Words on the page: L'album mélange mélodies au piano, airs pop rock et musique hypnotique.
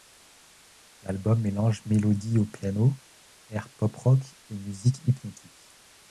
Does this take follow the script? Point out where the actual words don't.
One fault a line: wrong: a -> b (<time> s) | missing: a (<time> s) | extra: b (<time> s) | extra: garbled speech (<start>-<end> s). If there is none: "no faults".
no faults